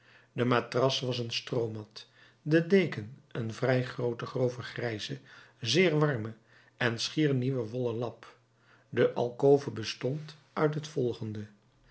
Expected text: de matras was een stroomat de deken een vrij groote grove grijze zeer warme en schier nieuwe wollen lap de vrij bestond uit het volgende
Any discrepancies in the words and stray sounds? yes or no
yes